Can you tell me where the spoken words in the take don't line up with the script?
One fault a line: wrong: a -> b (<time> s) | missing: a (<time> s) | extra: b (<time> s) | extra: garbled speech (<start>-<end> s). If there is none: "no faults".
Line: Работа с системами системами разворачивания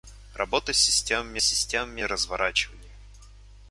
no faults